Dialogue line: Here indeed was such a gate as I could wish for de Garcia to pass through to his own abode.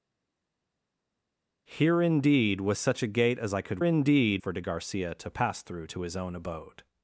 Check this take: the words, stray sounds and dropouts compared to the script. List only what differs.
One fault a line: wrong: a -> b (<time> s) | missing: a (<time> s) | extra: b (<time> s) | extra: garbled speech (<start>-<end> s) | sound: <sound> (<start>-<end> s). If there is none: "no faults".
wrong: wish -> indeed (3.8 s)